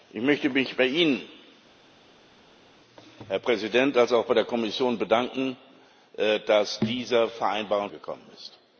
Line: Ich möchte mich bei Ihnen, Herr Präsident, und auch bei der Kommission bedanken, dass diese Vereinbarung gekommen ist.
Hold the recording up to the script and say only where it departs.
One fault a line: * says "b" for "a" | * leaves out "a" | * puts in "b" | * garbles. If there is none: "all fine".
all fine